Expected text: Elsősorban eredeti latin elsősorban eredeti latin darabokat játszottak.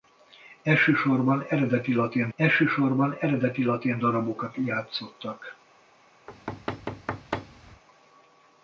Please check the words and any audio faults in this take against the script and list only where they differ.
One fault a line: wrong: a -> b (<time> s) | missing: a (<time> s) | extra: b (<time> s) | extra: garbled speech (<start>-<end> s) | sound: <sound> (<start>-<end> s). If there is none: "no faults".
sound: thud (6.3-7.8 s)